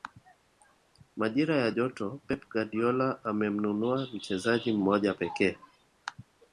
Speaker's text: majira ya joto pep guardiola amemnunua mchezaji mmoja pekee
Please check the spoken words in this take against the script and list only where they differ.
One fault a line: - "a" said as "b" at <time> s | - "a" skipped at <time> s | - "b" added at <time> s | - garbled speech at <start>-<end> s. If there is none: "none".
none